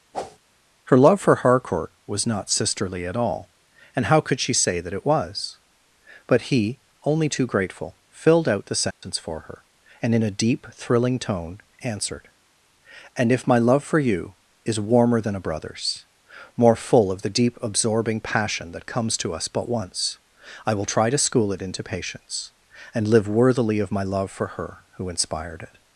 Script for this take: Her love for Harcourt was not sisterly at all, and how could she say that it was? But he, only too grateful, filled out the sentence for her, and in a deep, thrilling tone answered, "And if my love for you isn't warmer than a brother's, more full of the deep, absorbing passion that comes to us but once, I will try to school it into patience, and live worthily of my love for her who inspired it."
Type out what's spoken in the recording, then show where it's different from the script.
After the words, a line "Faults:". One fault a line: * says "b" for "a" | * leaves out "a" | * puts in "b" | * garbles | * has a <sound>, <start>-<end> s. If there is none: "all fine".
Her love for Harcourt was not sisterly at all, and how could she say that it was? But he, only too grateful, filled out the sentence for her, and in a deep, thrilling tone answered, "And if my love for you is warmer than a brother's, more full of the deep, absorbing passion that comes to us but once, I will try to school it into patience, and live worthily of my love for her who inspired it."
Faults:
* has a whoosh, 0.1-0.4 s
* has a dropout, 8.9-9.0 s
* says "is" for "isn't"